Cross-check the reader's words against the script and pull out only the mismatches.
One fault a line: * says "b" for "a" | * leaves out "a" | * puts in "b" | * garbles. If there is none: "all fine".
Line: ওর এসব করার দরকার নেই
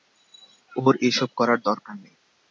all fine